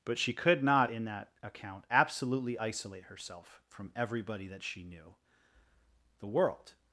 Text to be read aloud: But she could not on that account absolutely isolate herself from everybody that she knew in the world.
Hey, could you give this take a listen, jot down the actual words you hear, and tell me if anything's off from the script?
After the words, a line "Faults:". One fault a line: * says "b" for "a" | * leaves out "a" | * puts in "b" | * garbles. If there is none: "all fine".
But she could not in that account absolutely isolate herself from everybody that she knew the world.
Faults:
* says "in" for "on"
* leaves out "in"